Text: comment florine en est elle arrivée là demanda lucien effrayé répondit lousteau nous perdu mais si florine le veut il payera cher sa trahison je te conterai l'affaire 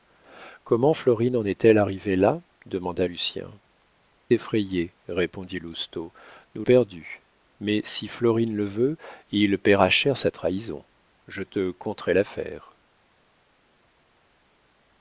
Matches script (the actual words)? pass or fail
pass